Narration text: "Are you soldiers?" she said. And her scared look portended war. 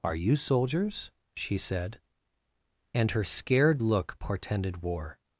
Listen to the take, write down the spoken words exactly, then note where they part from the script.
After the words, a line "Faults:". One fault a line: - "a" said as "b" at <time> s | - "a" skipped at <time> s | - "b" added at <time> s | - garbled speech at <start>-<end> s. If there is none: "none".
"Are you soldiers?" she said. And her scared look portended war.
Faults:
none